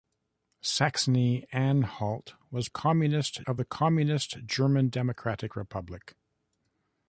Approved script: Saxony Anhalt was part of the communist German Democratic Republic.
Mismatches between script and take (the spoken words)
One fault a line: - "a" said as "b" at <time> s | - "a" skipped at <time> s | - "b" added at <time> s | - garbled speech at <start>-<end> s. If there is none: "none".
- "part" said as "communist" at 2.7 s